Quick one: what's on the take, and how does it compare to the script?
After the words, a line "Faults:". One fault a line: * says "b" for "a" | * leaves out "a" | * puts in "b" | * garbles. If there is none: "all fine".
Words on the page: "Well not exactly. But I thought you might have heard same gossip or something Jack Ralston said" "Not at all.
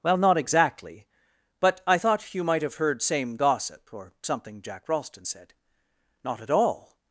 "Well not exactly. But I thought you might have heard same gossip or something Jack Ralston said" "Not at all.
Faults:
all fine